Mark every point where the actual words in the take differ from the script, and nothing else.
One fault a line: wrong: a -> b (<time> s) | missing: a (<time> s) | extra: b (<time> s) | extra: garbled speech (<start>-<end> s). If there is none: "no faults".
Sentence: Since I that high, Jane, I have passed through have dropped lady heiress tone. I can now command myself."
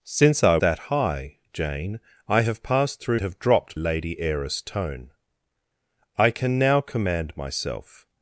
no faults